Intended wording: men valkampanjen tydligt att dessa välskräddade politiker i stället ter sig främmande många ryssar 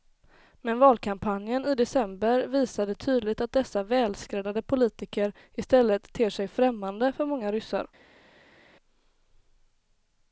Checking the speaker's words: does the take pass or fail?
fail